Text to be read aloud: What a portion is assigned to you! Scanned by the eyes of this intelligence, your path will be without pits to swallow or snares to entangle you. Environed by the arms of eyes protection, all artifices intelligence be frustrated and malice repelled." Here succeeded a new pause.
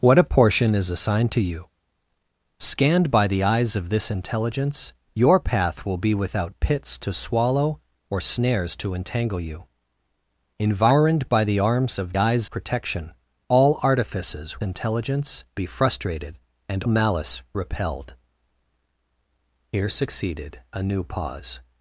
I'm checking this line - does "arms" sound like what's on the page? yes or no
yes